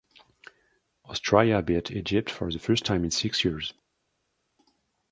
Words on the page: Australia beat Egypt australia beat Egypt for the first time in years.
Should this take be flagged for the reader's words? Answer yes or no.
yes